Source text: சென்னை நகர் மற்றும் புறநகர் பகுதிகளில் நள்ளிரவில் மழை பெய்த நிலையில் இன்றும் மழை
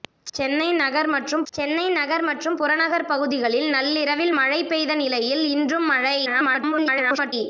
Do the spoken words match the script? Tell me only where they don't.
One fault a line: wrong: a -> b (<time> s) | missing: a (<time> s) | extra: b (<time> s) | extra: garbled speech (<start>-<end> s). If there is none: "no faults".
extra: சென்னை நகர் மற்றும் (1.5 s)
extra: garbled speech (6.3-7.3 s)